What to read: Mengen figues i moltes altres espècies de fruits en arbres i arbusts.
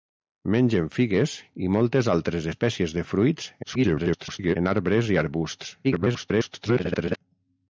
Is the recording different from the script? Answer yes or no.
yes